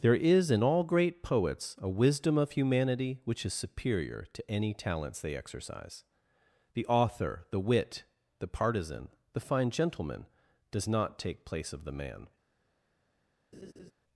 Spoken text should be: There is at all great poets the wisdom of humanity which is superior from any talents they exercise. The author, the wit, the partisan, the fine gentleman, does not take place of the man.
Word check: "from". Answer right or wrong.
wrong